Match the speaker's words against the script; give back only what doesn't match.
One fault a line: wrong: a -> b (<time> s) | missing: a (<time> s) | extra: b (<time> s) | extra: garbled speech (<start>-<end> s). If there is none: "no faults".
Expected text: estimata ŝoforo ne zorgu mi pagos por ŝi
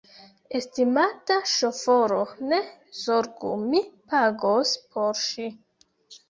no faults